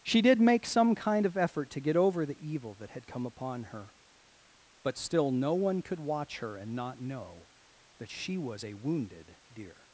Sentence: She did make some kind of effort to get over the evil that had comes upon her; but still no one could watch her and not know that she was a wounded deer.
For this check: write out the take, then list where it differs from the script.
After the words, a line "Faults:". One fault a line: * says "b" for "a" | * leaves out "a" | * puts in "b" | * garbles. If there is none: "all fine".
She did make some kind of effort to get over the evil that had come upon her; but still no one could watch her and not know that she was a wounded deer.
Faults:
* says "come" for "comes"